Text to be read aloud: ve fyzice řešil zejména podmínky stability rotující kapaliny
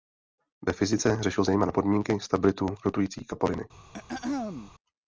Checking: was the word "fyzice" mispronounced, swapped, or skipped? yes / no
no